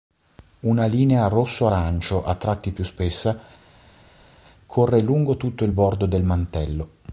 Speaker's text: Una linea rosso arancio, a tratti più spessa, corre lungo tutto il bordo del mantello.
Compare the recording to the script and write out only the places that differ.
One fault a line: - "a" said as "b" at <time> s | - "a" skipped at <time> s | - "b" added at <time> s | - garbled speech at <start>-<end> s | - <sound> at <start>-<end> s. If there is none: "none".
none